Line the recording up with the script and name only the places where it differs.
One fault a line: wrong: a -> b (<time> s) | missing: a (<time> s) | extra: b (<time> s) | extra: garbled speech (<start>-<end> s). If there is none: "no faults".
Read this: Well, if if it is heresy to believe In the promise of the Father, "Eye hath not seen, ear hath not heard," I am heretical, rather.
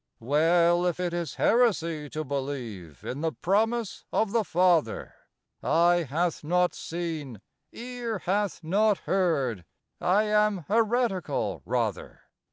missing: if (1.0 s)